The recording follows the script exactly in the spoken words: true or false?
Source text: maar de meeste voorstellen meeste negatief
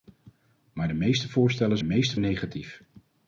true